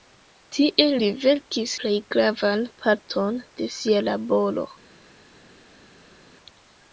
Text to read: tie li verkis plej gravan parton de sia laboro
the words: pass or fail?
pass